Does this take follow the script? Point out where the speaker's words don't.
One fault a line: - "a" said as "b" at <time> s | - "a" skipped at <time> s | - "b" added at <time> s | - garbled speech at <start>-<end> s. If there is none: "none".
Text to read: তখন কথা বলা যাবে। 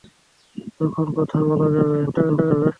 - garbled speech at 2.1-2.7 s